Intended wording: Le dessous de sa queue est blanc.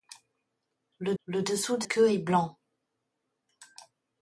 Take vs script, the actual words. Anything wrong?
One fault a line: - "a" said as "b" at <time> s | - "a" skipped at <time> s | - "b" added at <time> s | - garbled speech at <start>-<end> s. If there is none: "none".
- "le" added at 1.2 s
- "sa" skipped at 1.8 s